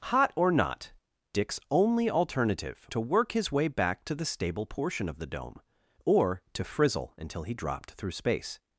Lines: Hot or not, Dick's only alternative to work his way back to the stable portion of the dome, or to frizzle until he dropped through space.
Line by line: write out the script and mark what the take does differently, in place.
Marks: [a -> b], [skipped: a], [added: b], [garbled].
Hot or not, Dick's only alternative to work his way back to the stable portion of the dome, or to frizzle until he dropped through space.